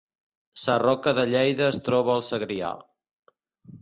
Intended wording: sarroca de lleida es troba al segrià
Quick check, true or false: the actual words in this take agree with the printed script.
true